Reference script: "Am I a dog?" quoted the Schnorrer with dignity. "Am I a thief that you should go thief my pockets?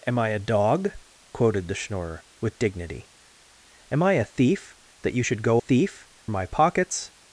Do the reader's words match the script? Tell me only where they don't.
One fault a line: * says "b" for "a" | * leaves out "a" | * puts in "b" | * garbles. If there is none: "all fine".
all fine